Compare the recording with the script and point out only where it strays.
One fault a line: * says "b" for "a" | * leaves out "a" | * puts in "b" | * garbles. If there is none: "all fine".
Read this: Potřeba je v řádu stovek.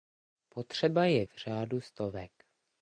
all fine